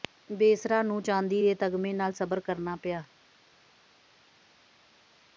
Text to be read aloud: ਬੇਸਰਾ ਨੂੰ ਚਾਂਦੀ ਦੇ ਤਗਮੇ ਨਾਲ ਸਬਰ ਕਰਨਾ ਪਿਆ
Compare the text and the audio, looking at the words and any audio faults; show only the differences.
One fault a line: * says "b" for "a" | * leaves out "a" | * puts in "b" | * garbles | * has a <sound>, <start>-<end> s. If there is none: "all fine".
all fine